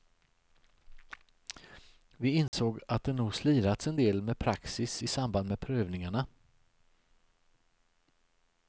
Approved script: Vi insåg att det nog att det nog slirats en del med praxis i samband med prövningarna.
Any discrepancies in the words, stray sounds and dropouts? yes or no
yes